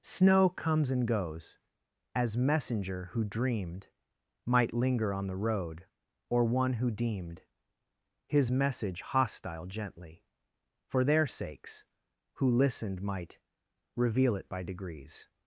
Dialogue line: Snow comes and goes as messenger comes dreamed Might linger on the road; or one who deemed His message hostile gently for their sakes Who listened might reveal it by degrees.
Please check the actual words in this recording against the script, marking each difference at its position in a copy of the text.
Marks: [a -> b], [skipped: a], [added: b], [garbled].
Snow comes and goes as messenger [comes -> who] dreamed Might linger on the road; or one who deemed His message hostile gently for their sakes Who listened might reveal it by degrees.